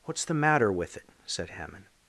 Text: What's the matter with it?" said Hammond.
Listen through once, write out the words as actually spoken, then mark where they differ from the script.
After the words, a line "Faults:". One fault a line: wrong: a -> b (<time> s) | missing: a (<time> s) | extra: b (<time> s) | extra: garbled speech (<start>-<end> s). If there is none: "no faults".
What's the matter with it?" said Hammond.
Faults:
no faults